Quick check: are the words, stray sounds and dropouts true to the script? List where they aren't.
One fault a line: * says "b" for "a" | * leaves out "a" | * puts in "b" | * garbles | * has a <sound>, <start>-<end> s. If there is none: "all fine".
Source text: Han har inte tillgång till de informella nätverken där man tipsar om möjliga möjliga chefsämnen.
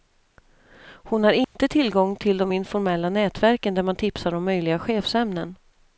* says "Hon" for "Han"
* has a dropout, 1.4-1.6 s
* leaves out "möjliga"